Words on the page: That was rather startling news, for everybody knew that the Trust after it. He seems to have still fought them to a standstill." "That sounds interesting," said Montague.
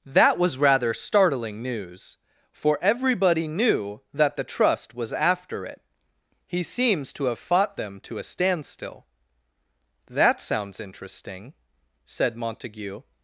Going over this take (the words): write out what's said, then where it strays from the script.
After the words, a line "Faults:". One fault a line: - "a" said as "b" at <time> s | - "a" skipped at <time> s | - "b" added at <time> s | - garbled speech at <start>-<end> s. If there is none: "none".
That was rather startling news, for everybody knew that the Trust was after it. He seems to have fought them to a standstill." "That sounds interesting," said Montague.
Faults:
- "was" added at 4.9 s
- "still" skipped at 7.4 s